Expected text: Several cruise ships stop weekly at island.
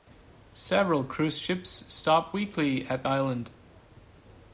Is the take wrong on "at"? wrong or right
right